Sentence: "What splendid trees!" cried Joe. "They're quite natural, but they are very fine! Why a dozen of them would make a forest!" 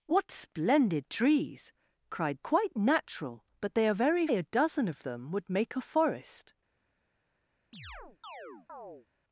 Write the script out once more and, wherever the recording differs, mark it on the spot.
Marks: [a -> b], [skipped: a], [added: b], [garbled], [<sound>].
"What splendid trees!" cried [skipped: Joe. "They're] quite natural, but they are very [skipped: fine! Why] a dozen of them would make a forest!" [chirp]